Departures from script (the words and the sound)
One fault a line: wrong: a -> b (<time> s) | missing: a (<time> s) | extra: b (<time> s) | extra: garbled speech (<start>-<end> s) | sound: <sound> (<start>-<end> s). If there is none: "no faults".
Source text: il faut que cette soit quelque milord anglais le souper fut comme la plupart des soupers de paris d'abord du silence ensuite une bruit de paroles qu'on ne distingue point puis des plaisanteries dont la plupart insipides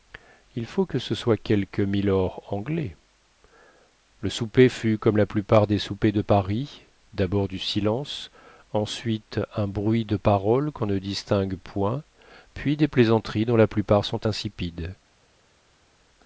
wrong: cette -> ce (1.0 s)
wrong: une -> un (9.6 s)
extra: sont (14.1 s)